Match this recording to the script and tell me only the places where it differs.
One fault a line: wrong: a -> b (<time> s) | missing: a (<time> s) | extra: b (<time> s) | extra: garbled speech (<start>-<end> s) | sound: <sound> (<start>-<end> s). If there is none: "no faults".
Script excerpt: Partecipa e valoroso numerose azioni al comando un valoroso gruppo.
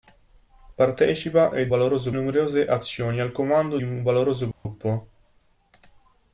sound: dropout (4.5-4.7 s)